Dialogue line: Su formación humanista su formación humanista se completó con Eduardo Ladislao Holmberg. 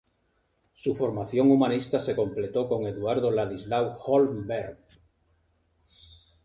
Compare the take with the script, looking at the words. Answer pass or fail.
fail